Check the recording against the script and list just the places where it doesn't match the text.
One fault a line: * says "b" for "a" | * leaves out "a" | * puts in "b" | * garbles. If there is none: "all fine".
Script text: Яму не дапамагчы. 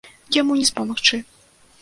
all fine